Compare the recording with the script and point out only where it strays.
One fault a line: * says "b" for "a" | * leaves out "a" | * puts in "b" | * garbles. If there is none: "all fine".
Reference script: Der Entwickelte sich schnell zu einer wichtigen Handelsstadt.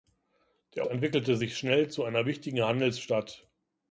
all fine